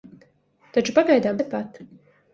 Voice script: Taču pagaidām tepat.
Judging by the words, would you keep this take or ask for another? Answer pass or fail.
pass